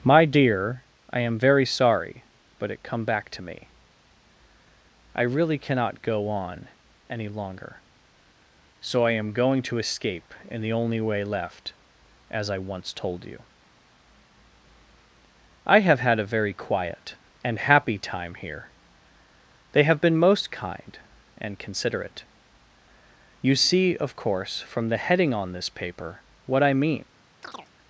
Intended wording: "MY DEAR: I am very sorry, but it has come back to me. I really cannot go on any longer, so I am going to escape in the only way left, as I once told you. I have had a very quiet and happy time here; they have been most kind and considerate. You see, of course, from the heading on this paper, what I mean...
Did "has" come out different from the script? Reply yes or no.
yes